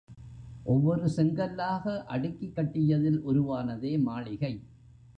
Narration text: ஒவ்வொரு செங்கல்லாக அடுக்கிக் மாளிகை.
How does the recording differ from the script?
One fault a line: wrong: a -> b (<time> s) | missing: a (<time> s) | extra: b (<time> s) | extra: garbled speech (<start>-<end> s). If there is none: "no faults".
extra: கட்டியதில் உருவானதே (2.5 s)